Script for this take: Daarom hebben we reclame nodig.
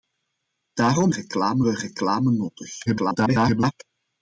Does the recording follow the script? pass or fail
fail